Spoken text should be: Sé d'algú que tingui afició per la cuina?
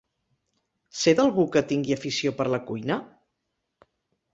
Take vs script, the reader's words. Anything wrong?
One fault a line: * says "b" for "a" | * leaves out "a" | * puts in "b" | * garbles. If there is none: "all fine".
all fine